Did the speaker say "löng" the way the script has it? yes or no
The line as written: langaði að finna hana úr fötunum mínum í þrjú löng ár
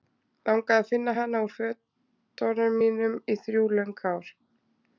yes